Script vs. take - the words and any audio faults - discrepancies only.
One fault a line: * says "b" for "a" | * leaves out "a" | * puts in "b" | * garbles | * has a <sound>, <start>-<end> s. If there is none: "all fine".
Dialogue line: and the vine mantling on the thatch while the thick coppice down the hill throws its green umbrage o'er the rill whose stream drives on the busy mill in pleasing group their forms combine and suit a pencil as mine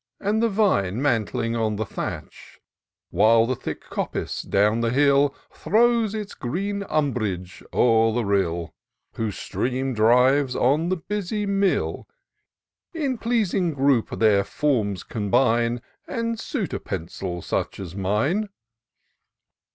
* puts in "such"